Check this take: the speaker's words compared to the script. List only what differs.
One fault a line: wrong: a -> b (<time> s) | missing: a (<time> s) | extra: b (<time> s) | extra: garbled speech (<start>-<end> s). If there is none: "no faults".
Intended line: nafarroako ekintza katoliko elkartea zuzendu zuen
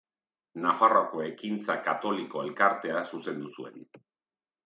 no faults